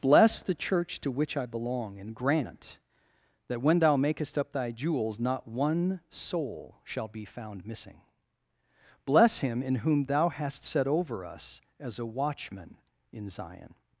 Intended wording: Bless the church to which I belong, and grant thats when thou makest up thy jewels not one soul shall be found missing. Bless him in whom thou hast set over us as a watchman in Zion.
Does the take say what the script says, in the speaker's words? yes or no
no